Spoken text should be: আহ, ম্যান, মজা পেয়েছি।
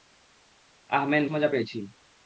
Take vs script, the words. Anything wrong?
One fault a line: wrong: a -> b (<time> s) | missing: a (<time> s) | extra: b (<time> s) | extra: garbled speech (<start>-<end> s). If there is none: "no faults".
no faults